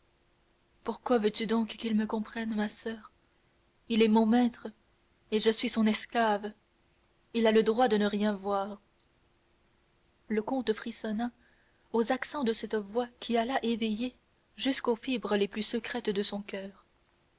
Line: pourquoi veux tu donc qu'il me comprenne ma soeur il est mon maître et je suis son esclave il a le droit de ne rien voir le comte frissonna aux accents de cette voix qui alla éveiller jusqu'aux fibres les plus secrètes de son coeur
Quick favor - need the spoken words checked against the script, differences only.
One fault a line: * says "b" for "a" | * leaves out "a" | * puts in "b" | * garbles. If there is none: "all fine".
all fine